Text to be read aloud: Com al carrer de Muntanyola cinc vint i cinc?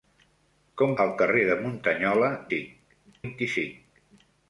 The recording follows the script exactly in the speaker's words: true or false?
true